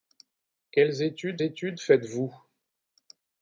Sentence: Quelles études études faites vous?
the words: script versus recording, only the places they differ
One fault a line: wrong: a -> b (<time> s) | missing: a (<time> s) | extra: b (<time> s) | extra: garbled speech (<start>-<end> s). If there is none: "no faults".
no faults